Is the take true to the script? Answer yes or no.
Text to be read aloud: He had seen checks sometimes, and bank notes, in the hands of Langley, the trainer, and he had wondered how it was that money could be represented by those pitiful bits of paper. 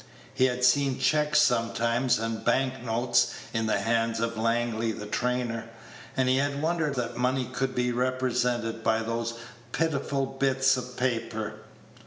no